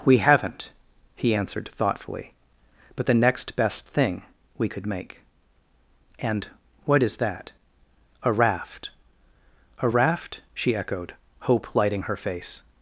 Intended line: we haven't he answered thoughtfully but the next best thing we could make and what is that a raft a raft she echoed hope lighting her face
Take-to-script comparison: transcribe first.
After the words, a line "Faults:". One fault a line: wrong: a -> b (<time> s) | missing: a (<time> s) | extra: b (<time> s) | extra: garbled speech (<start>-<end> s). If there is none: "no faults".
we haven't he answered thoughtfully but the next best thing we could make and what is that a raft a raft she echoed hope lighting her face
Faults:
no faults